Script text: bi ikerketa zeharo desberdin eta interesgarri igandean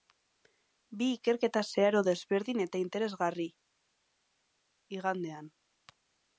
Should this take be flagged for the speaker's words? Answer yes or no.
no